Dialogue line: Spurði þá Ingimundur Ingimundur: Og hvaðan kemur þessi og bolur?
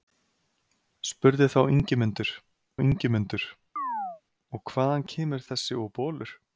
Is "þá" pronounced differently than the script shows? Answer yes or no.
no